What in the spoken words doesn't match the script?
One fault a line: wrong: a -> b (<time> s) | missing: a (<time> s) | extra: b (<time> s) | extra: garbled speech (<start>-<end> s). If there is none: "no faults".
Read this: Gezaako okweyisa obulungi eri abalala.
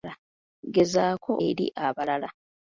missing: okweyisa obulungi (1.3 s)